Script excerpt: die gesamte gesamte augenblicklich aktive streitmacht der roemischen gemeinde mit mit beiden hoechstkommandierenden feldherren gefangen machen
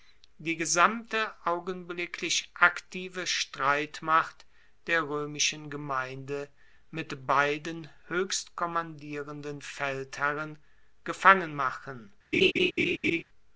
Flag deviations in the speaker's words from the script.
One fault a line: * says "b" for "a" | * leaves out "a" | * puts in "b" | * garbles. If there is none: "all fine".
* leaves out "gesamte"
* leaves out "mit"